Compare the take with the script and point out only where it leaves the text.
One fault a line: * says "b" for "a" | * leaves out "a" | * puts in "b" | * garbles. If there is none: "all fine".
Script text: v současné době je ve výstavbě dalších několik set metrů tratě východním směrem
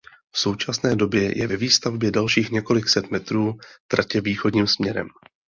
all fine